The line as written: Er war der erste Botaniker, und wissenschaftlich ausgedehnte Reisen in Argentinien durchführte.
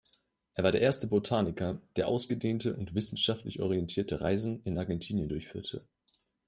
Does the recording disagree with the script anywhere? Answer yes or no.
yes